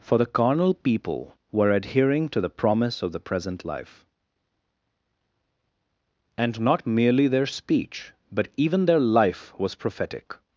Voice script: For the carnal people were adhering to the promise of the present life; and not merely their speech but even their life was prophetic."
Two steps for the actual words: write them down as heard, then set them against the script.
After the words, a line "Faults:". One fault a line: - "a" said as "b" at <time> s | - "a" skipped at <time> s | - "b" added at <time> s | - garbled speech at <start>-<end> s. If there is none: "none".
For the carnal people were adhering to the promise of the present life; and not merely their speech but even their life was prophetic."
Faults:
none